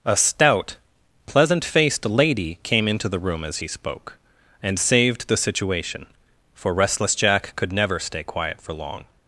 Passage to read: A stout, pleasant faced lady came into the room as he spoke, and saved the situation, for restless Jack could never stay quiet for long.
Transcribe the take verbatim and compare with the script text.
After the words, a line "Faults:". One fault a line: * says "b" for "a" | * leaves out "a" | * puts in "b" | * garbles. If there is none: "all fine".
A stout, pleasant faced lady came into the room as he spoke, and saved the situation, for restless Jack could never stay quiet for long.
Faults:
all fine